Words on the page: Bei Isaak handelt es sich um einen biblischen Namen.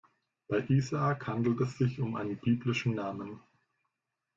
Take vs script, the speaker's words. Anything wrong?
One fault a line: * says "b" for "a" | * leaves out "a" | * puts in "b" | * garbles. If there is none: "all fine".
all fine